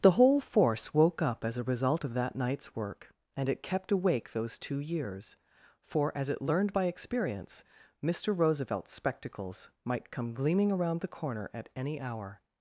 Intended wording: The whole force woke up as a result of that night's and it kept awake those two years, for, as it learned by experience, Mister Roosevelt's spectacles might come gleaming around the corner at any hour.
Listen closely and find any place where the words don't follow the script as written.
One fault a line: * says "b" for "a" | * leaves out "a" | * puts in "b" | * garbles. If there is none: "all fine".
* puts in "work"